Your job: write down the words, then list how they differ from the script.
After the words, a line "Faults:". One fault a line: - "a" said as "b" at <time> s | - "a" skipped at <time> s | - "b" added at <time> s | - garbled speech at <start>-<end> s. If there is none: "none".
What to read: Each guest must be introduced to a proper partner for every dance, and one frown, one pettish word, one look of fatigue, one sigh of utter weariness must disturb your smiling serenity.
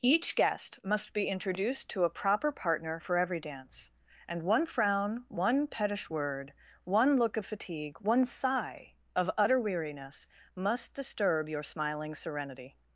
Each guest must be introduced to a proper partner for every dance, and one frown, one pettish word, one look of fatigue, one sigh of utter weariness must disturb your smiling serenity.
Faults:
none